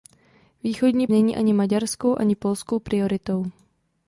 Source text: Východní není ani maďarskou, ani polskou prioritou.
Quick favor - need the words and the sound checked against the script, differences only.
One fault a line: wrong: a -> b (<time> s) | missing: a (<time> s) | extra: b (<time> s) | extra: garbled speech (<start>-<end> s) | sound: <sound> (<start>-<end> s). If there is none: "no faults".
no faults